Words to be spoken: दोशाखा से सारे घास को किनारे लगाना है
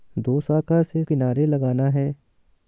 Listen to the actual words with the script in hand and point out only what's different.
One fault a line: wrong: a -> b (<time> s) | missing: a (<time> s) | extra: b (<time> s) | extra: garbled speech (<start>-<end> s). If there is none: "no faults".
missing: सारे घास को (1.0 s)